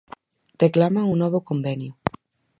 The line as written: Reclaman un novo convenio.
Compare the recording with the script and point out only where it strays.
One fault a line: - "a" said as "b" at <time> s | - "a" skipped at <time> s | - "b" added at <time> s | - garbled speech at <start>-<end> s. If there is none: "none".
none